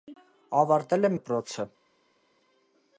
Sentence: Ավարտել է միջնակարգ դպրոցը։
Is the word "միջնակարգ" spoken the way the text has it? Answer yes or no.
no